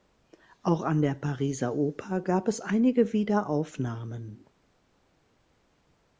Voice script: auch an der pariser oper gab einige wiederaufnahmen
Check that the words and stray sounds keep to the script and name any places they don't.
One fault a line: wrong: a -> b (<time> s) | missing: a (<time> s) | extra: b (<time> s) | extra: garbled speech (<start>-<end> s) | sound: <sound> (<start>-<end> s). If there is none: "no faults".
extra: es (2.5 s)